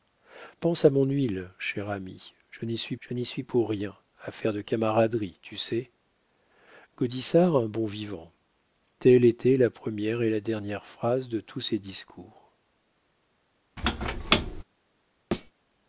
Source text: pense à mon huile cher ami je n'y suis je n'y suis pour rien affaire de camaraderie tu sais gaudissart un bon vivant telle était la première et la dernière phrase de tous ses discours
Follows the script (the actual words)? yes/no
yes